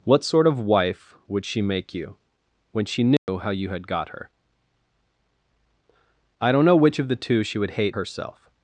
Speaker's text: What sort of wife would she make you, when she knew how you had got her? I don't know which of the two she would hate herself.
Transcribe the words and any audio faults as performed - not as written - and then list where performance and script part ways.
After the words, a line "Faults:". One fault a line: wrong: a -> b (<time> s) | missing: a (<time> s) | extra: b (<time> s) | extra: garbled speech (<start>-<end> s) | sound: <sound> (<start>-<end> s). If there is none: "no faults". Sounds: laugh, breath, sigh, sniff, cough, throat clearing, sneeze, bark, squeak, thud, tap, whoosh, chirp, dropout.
What sort of wife would she make you, when she knew how you had got her? I don't know which of the two she would hate herself.
Faults:
sound: dropout (3.2-3.3 s)